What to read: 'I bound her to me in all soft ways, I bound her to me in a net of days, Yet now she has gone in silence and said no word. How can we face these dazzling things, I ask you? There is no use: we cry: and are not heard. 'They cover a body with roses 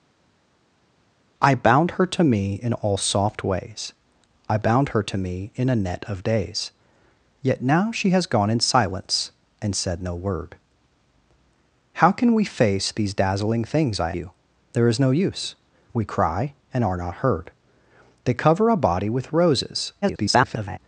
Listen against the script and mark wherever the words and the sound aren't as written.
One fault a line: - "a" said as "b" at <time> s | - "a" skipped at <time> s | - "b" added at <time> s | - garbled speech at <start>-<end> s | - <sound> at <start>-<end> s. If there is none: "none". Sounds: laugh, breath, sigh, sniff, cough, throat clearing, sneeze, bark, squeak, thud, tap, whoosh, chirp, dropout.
- "ask" skipped at 14.1 s
- garbled speech at 20.0-20.8 s